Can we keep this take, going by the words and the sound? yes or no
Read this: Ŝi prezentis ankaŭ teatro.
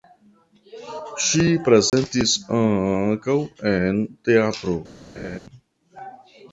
no